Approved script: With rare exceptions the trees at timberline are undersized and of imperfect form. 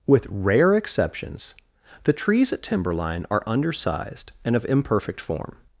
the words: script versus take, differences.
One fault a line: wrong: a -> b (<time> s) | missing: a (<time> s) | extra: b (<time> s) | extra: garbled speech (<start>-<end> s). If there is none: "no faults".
no faults